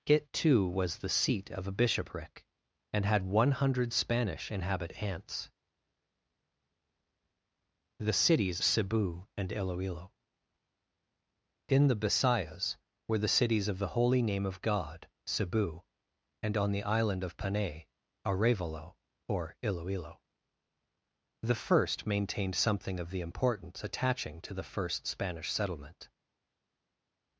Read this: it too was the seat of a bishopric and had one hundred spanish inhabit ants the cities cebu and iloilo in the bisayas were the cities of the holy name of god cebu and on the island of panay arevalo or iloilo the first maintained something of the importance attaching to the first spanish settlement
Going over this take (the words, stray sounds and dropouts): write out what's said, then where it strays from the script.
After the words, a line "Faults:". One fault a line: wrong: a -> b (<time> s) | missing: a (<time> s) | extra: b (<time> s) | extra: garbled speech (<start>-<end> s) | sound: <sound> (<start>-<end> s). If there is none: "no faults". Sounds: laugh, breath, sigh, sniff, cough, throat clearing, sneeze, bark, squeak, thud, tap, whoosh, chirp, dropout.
it too was the seat of a bishopric and had one hundred spanish inhabit ants the cities cebu and iloilo in the bisayas were the cities of the holy name of god cebu and on the island of panay arevalo or iloilo the first maintained something of the importance attaching to the first spanish settlement
Faults:
no faults